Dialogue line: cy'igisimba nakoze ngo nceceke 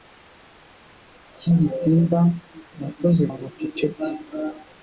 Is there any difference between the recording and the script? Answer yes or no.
no